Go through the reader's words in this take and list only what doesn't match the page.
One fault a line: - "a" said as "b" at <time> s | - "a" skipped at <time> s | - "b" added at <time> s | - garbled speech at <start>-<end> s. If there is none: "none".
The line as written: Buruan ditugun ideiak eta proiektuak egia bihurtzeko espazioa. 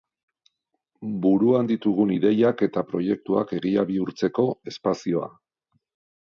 none